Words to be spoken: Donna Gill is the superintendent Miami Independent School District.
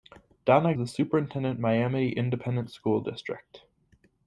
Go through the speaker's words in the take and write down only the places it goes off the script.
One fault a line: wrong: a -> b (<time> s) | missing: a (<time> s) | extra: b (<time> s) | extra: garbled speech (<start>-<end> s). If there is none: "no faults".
missing: Gill is (0.7 s)